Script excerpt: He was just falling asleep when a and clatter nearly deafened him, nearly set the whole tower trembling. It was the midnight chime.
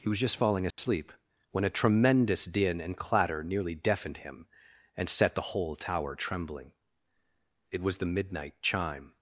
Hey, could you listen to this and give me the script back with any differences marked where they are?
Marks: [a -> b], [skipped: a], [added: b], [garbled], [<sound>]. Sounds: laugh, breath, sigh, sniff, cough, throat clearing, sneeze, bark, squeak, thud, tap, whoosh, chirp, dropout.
He was just falling asleep [dropout] when a [added: tremendous din] and clatter nearly deafened him, [nearly -> and] set the whole tower trembling. It was the midnight chime.